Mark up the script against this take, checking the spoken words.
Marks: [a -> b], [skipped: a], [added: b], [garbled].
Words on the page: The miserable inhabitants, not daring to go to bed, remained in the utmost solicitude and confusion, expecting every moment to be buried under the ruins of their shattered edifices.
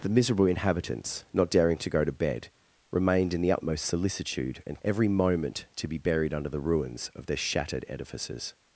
The miserable inhabitants, not daring to go to bed, remained in the utmost solicitude and [skipped: confusion, expecting] every moment to be buried under the ruins of their shattered edifices.